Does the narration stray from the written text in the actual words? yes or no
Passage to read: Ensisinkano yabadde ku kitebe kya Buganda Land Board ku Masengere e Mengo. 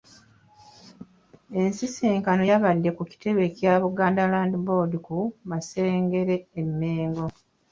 no